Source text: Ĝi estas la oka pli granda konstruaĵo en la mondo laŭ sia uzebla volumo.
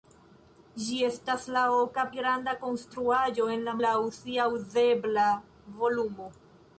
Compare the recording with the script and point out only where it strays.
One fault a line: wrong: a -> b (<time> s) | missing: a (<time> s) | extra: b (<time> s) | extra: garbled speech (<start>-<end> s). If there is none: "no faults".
missing: pli (2.0 s)
missing: mondo (3.7 s)